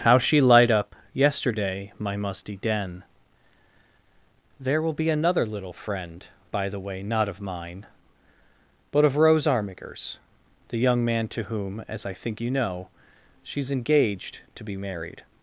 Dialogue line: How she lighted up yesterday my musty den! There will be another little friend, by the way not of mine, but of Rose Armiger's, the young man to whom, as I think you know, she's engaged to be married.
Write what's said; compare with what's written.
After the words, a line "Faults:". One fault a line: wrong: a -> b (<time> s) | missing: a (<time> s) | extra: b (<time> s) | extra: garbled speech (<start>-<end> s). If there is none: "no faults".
How she light up yesterday my musty den! There will be another little friend, by the way not of mine, but of Rose Armiger's, the young man to whom, as I think you know, she's engaged to be married.
Faults:
wrong: lighted -> light (0.4 s)